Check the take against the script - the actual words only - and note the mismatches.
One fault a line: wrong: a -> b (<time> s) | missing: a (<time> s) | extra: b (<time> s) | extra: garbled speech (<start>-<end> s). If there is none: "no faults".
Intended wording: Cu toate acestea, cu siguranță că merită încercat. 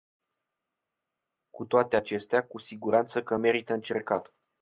no faults